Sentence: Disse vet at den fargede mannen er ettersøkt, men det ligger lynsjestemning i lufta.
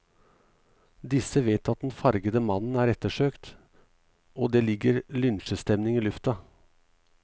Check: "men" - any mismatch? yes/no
yes